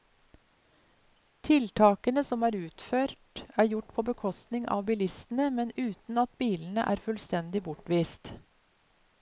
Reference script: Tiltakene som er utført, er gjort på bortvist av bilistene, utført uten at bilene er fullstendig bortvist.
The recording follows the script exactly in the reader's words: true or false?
false